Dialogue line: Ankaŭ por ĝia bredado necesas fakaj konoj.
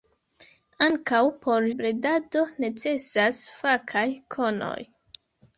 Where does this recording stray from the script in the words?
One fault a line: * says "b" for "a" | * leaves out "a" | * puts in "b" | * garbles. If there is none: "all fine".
* leaves out "ĝia"